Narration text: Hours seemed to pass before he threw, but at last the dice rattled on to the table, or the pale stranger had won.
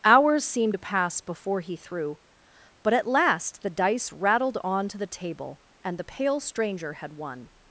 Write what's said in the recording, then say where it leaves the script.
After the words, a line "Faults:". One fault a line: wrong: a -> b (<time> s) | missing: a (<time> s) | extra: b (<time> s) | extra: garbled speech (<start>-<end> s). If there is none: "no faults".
Hours seemed to pass before he threw, but at last the dice rattled on to the table, and the pale stranger had won.
Faults:
wrong: or -> and (5.8 s)